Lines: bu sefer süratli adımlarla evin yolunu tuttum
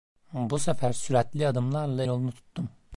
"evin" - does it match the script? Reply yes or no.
no